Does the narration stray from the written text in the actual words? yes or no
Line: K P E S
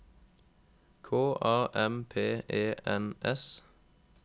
yes